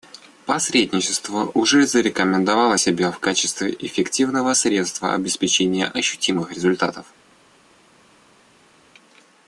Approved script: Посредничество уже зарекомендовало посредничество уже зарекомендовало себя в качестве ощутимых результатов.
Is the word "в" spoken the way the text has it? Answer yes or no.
no